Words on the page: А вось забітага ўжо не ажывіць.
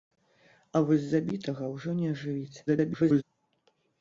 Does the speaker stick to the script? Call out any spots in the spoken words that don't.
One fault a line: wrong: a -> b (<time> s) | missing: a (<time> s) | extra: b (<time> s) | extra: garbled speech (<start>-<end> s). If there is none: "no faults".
extra: garbled speech (2.7-3.2 s)